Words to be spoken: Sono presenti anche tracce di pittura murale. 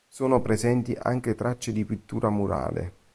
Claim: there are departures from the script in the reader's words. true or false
false